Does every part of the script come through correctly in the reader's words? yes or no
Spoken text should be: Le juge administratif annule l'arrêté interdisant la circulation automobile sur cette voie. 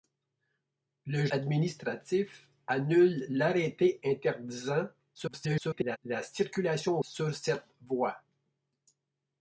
no